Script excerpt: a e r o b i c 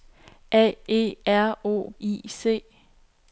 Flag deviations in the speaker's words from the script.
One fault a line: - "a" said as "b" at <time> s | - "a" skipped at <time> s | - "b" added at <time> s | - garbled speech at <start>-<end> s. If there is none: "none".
- "b" skipped at 1.9 s